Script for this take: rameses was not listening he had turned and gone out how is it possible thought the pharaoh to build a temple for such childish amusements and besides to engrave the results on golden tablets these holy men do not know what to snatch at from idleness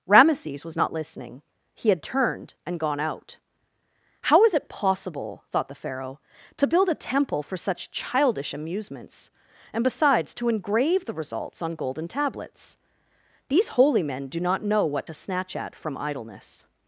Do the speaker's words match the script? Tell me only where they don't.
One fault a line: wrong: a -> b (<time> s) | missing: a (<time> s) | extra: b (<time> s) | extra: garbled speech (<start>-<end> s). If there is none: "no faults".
no faults